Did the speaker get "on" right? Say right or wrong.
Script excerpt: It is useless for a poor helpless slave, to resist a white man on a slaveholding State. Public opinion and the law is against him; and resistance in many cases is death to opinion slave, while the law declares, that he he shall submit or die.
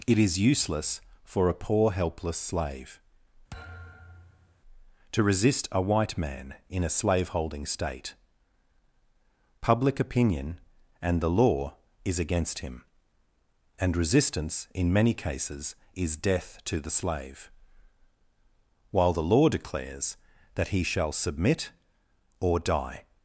wrong